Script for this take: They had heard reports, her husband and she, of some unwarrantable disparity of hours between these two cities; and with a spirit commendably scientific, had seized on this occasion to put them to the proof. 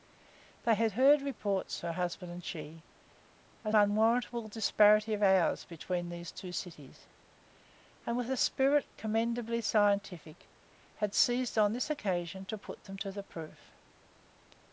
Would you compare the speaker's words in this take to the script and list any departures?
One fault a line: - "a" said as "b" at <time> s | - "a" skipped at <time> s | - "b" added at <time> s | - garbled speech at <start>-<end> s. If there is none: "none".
- "some" skipped at 3.8 s